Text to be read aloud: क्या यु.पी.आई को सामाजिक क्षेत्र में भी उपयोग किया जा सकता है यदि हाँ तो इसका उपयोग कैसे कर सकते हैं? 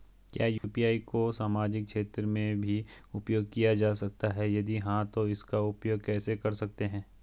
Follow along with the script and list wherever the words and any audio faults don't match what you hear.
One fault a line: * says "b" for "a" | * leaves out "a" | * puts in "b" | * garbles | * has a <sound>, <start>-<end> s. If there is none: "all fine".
* has a dropout, 0.6-0.6 s